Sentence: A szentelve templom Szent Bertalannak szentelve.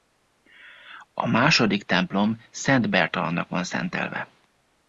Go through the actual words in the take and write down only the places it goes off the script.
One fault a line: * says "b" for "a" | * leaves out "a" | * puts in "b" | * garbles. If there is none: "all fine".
* says "második" for "szentelve"
* puts in "van"